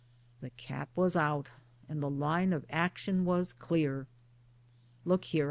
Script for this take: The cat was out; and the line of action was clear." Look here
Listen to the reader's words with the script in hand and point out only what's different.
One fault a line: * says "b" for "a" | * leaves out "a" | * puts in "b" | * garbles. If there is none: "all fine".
all fine